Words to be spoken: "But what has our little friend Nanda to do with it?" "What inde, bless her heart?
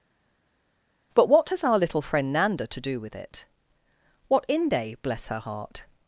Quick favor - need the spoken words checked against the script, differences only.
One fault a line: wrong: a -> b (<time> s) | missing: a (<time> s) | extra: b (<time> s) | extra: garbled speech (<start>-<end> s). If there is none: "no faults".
no faults